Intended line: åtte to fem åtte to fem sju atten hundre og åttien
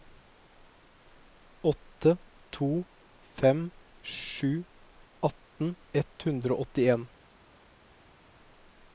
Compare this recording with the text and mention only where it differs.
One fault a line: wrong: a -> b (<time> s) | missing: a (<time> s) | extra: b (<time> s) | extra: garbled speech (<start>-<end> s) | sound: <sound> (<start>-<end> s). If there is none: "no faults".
missing: åtte to fem (3.7 s)
extra: ett (5.9 s)